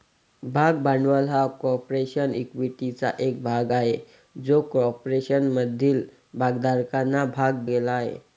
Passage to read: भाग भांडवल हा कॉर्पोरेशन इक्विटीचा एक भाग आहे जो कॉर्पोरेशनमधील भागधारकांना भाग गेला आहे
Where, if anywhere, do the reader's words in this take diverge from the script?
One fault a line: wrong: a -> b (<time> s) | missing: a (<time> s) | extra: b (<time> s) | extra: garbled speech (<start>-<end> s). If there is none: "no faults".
no faults